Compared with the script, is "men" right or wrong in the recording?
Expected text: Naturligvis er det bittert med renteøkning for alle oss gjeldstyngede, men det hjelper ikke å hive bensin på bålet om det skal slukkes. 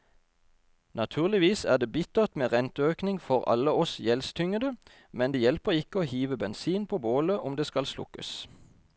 right